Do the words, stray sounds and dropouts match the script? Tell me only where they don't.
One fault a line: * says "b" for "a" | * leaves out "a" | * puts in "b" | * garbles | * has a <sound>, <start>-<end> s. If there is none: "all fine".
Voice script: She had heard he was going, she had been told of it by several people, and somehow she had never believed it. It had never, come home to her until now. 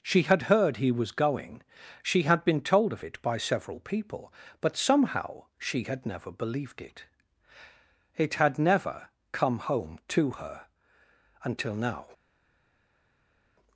* says "but" for "and"